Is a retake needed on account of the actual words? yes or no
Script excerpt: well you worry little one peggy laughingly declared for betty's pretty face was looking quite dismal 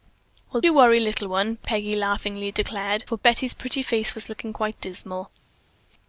no